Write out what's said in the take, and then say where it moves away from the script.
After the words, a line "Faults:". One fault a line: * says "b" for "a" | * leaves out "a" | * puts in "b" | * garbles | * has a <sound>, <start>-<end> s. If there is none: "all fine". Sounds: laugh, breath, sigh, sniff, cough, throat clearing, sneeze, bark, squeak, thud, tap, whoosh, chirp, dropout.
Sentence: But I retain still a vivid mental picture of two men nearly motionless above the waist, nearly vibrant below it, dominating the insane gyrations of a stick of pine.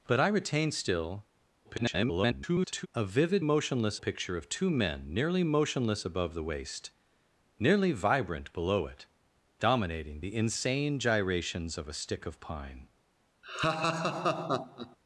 But I retain still [garbled] a vivid motionless picture of two men nearly motionless above the waist, nearly vibrant below it, dominating the insane gyrations of a stick of pine.
Faults:
* garbles
* says "motionless" for "mental"
* has a laugh, 13.4-15.0 s